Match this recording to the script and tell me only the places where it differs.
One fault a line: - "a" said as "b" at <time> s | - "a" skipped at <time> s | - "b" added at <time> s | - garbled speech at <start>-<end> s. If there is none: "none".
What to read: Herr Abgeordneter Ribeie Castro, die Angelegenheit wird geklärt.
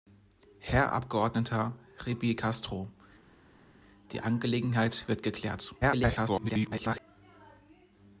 - garbled speech at 5.8-7.0 s